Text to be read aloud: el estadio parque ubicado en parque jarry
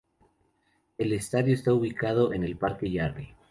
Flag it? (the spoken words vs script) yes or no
yes